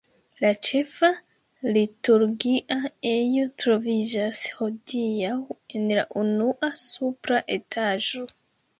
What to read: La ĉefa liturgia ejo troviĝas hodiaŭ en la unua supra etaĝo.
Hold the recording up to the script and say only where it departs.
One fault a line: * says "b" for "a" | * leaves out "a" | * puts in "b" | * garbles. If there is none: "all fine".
all fine